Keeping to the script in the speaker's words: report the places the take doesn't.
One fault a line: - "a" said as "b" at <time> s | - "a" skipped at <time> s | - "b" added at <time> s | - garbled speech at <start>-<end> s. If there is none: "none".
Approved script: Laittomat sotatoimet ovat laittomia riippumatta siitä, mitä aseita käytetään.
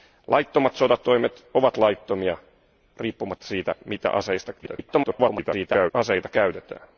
- garbled speech at 4.6-5.9 s